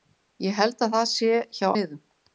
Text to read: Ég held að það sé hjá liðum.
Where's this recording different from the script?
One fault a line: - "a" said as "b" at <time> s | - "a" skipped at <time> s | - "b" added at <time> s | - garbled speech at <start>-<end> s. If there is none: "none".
none